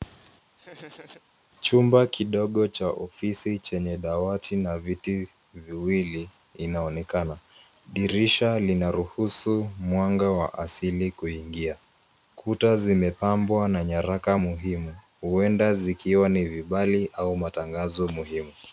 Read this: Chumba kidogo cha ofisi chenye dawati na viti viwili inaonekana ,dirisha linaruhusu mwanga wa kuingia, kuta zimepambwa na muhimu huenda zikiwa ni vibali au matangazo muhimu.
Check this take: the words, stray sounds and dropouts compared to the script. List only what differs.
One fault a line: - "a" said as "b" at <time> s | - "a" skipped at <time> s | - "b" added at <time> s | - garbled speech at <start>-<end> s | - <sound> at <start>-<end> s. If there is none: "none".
- laugh at 0.6-1.2 s
- "asili" added at 10.6 s
- "nyaraka" added at 13.8 s